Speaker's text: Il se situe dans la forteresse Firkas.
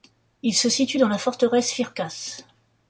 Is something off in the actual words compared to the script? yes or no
no